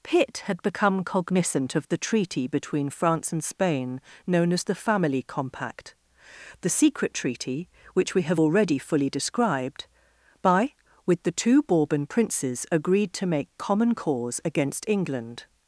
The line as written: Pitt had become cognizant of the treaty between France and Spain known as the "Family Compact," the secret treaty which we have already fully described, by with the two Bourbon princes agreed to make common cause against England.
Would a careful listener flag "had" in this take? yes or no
no